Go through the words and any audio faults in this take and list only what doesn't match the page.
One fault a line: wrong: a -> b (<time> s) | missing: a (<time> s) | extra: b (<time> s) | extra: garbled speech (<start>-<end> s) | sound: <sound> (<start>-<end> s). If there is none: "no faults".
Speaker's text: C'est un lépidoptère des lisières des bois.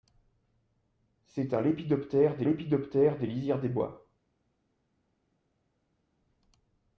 extra: lépidoptère des (2.4 s)